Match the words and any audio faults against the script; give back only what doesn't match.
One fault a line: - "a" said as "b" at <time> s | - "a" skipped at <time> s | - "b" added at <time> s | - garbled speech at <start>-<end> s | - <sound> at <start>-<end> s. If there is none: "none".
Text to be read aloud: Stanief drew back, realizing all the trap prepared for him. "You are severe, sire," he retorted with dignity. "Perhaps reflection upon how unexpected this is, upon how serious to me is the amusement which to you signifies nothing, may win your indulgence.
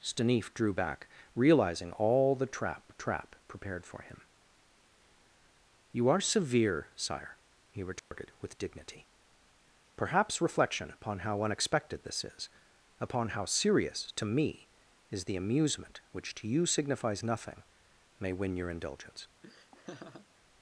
- "trap" added at 3.0 s
- dropout at 8.0-8.1 s
- laugh at 19.4-20.3 s